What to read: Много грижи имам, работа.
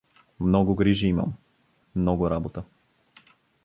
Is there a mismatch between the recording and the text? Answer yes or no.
yes